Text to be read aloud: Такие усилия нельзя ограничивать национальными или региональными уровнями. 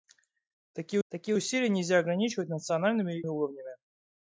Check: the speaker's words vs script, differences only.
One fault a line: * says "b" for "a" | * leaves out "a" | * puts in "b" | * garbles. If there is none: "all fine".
* puts in "такие"
* leaves out "или региональными"